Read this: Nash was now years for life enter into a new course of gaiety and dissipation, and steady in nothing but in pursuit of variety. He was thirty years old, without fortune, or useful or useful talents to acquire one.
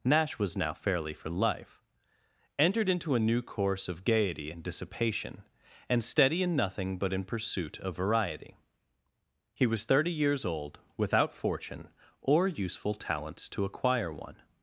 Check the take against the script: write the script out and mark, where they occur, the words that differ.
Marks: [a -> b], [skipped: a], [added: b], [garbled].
Nash was now [years -> fairly] for life [enter -> entered] into a new course of gaiety and dissipation, and steady in nothing but in pursuit of variety. He was thirty years old, without fortune, or useful [skipped: or useful] talents to acquire one.